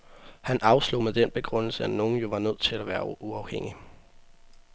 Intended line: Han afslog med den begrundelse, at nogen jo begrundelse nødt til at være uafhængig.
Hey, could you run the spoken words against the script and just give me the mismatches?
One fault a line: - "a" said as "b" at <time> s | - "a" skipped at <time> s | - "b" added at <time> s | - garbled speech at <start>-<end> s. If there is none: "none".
- "begrundelse" said as "var" at 2.3 s